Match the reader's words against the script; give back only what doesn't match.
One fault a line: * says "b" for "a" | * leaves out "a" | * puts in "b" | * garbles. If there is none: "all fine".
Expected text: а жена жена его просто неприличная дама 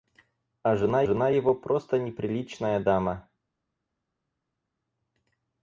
all fine